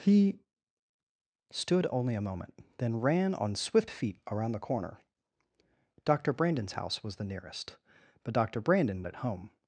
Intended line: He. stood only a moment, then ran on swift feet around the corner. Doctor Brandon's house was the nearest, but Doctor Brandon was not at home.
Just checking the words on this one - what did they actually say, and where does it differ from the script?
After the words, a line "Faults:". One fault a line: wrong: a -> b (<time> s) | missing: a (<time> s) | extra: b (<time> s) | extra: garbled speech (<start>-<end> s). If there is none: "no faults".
He. stood only a moment, then ran on swift feet around the corner. Doctor Brandon's house was the nearest, but Doctor Brandon at home.
Faults:
missing: was not (9.0 s)